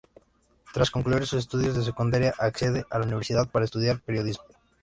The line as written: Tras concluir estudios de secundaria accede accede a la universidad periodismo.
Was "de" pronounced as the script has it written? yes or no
yes